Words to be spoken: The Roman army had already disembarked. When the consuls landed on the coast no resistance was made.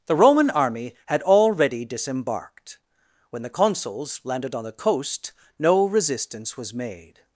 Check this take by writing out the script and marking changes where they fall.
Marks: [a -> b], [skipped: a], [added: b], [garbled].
The Roman army had already disembarked. When the consuls landed on the coast no resistance was made.